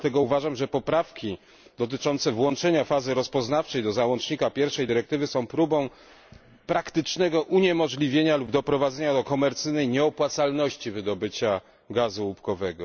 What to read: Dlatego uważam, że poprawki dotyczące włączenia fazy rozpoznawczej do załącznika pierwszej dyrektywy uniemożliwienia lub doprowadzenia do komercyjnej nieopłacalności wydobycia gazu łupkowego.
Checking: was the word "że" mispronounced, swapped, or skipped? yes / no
no